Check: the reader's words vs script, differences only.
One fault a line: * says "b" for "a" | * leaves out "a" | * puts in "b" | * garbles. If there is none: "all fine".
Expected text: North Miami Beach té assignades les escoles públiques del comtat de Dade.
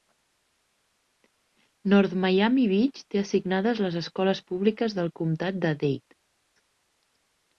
all fine